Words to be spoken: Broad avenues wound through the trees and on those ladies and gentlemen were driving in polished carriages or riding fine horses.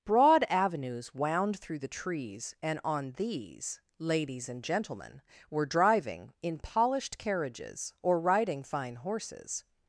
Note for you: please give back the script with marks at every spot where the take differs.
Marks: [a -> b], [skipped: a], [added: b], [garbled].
Broad avenues wound through the trees and on [those -> these] ladies and gentlemen were driving in polished carriages or riding fine horses.